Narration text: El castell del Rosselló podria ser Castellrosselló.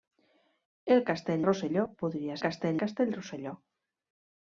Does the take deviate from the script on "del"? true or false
true